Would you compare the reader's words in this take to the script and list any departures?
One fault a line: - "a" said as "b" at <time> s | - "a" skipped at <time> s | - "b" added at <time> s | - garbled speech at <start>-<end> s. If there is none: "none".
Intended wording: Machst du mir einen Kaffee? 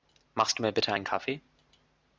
- "bitte" added at 0.7 s